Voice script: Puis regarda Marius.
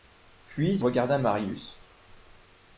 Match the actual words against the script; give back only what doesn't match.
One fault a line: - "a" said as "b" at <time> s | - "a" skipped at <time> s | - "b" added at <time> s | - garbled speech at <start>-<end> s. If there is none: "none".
none